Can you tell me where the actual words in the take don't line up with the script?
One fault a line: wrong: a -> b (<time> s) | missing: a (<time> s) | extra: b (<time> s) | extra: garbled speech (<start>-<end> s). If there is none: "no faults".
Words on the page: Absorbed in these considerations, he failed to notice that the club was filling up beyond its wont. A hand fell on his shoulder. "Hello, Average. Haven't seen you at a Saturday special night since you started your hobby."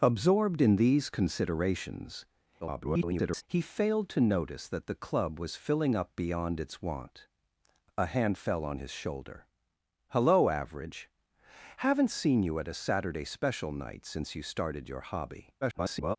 extra: garbled speech (2.6-3.4 s)
extra: garbled speech (15.6-16.2 s)